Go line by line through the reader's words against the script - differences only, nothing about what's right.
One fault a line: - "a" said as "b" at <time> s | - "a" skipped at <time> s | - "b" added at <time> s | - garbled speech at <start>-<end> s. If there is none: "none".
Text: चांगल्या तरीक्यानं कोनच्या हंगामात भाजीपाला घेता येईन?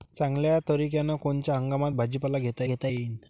- "घेता" added at 2.6 s